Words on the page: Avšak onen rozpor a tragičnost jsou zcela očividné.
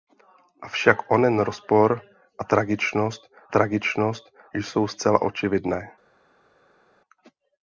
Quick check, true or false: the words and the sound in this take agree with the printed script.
false